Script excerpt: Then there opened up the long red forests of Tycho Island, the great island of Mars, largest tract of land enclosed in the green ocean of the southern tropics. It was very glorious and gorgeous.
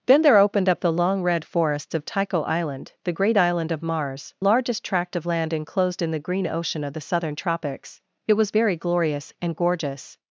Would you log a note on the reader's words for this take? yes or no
no